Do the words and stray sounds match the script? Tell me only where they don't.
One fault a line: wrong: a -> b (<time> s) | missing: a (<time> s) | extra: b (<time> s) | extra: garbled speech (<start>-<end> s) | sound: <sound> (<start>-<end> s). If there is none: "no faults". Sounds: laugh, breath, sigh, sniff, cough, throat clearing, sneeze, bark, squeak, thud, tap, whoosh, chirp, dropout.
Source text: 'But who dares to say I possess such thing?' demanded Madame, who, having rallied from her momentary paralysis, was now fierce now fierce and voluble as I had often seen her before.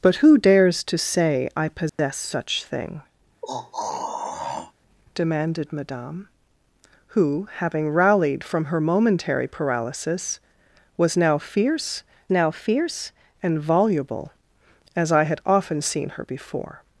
sound: dropout (1.9-2.0 s)
sound: throat clearing (3.4-4.7 s)